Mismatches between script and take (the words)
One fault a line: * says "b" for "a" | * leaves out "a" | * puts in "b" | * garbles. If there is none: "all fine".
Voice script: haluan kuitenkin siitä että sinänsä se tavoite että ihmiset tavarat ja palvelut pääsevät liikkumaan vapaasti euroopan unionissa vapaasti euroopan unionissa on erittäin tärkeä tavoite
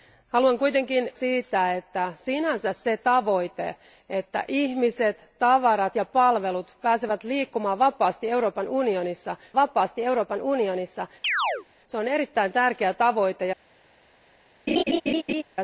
all fine